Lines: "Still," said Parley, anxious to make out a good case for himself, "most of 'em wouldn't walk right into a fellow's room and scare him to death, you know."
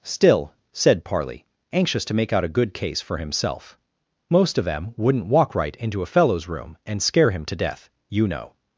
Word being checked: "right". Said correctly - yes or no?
yes